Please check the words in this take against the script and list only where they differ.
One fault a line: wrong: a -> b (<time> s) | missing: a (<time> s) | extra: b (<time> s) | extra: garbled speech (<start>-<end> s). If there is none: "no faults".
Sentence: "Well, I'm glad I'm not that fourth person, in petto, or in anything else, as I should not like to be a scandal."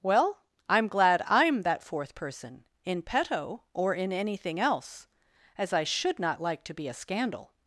missing: not (1.6 s)